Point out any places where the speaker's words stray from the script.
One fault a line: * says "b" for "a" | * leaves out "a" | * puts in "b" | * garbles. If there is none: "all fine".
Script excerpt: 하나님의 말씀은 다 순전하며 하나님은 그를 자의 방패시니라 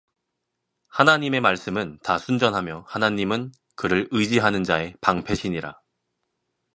* puts in "의지하는"